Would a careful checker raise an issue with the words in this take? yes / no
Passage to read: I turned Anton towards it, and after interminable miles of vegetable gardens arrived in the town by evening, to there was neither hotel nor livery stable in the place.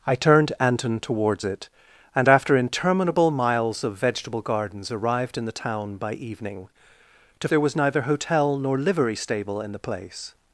no